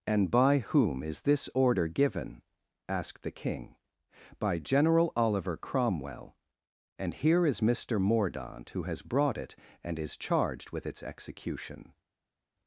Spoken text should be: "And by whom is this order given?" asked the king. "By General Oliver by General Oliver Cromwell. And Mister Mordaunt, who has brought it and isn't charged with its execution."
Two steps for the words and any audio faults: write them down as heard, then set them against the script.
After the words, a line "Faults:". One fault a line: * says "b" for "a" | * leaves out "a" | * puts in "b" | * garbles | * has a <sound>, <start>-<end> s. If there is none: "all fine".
"And by whom is this order given?" asked the king. "By General Oliver Cromwell. And here is Mister Mordaunt, who has brought it and is charged with its execution."
Faults:
* says "Cromwell And here is" for "by General Oliver Cromwell And"
* says "is" for "isn't"